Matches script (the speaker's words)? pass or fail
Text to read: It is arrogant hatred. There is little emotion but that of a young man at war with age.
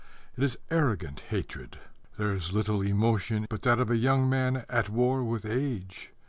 pass